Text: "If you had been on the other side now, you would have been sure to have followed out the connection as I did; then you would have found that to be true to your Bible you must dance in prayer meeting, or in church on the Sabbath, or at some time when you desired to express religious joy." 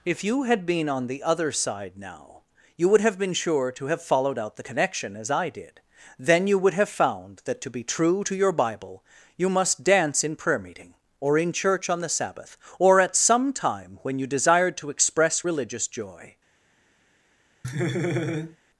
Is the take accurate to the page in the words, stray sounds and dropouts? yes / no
no